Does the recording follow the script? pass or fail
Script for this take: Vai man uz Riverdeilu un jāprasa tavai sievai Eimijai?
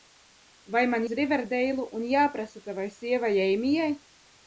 pass